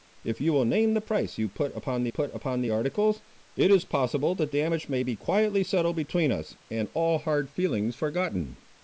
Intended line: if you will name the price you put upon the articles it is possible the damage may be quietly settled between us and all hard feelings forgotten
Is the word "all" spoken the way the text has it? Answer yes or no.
yes